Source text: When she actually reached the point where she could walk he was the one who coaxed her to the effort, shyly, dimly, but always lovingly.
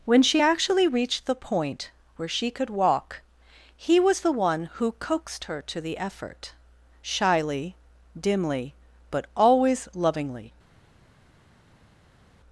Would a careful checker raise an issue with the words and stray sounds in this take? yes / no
no